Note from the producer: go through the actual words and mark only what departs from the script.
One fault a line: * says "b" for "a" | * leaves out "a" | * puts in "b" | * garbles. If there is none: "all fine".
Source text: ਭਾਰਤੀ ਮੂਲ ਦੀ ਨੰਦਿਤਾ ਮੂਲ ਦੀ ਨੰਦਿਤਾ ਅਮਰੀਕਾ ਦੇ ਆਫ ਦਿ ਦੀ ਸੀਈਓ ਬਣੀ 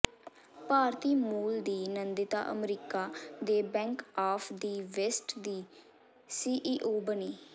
* leaves out "ਮੂਲ ਦੀ ਨੰਦਿਤਾ"
* puts in "ਬੈਂਕ"
* puts in "ਵੈਸਟ"